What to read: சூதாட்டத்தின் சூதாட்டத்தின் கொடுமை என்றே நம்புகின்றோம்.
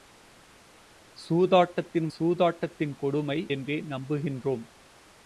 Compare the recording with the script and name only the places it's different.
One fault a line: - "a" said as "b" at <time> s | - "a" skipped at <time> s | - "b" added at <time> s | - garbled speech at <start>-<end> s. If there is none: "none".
none